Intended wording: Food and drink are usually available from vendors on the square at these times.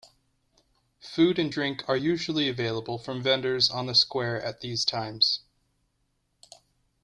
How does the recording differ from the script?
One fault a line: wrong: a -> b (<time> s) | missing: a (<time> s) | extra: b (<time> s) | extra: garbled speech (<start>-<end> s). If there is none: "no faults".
no faults